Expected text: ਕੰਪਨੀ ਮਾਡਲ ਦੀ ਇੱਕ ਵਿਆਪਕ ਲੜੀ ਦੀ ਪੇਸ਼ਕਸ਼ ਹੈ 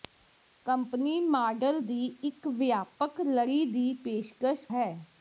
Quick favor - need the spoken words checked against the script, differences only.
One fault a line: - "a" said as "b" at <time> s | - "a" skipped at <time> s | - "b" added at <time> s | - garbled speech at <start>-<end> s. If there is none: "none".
none